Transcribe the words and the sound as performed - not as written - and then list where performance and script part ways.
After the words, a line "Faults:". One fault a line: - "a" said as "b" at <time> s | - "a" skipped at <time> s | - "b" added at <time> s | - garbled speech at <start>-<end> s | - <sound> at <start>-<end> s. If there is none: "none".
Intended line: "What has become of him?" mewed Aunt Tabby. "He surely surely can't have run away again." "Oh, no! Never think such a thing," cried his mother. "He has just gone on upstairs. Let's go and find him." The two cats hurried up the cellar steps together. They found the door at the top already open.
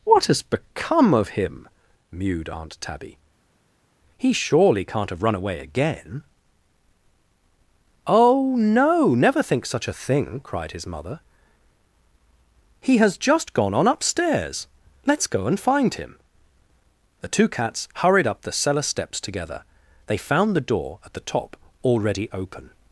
"What has become of him?" mewed Aunt Tabby. "He surely can't have run away again." "Oh, no! Never think such a thing," cried his mother. "He has just gone on upstairs. Let's go and find him." The two cats hurried up the cellar steps together. They found the door at the top already open.
Faults:
- "surely" skipped at 4.9 s